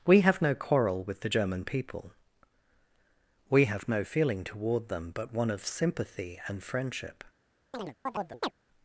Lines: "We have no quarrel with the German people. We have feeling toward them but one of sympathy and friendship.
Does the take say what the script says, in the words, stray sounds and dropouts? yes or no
no